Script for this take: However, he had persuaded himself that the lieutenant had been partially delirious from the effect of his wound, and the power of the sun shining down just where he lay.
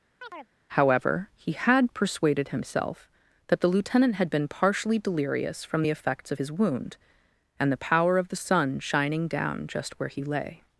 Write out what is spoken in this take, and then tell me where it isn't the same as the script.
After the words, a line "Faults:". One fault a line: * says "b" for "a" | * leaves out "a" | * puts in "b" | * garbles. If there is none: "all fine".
However, he had persuaded himself that the lieutenant had been partially delirious from the effects of his wound, and the power of the sun shining down just where he lay.
Faults:
* says "effects" for "effect"